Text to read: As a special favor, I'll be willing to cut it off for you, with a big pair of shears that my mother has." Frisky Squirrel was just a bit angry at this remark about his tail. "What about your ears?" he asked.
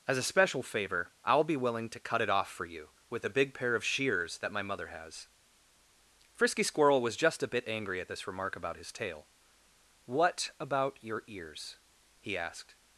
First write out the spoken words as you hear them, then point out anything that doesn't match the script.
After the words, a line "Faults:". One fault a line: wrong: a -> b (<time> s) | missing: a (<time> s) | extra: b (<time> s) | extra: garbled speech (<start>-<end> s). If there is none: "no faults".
As a special favor, I'll be willing to cut it off for you, with a big pair of shears that my mother has." Frisky Squirrel was just a bit angry at this remark about his tail. "What about your ears?" he asked.
Faults:
no faults